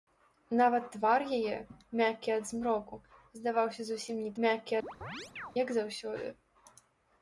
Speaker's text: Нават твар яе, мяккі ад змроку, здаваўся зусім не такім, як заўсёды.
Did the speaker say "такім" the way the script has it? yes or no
no